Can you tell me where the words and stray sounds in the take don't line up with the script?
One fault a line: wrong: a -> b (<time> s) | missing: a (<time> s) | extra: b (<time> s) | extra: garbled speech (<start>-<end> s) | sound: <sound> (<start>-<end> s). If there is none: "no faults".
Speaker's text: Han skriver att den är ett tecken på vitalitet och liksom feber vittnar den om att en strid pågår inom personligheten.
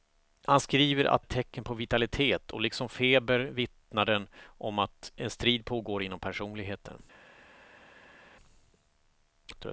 missing: den är (1.2 s)